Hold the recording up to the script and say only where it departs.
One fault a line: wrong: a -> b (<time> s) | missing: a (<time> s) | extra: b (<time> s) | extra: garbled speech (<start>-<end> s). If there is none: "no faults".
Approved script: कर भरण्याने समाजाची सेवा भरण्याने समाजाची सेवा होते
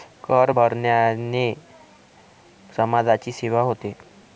missing: भरण्याने समाजाची सेवा (3.6 s)